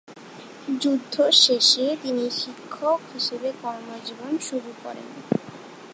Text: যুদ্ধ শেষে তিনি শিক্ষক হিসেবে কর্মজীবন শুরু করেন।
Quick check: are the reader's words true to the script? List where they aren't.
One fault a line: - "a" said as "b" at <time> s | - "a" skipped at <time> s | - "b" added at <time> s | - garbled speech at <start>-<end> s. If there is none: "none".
none